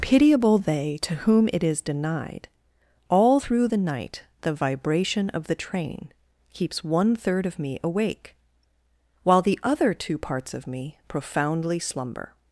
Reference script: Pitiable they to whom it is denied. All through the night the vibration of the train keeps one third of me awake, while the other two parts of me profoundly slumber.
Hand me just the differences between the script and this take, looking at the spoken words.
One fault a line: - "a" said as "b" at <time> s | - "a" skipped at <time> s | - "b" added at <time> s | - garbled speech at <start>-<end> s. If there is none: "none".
none